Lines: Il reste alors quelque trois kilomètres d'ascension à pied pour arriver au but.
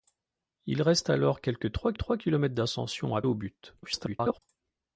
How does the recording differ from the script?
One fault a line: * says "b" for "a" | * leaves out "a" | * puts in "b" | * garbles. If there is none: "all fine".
* puts in "trois"
* leaves out "pied pour arriver"
* garbles